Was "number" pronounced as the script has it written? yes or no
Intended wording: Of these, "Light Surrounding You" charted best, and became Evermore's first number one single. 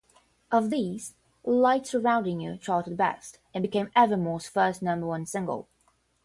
yes